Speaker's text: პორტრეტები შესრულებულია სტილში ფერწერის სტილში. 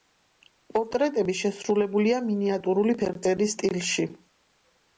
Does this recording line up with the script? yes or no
no